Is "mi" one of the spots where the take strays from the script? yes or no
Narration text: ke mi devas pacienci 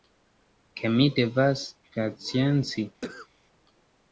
no